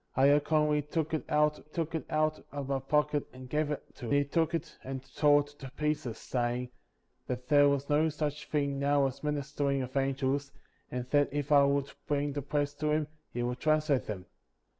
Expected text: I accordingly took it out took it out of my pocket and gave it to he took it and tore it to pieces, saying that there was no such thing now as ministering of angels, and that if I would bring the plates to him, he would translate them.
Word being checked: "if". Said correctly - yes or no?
yes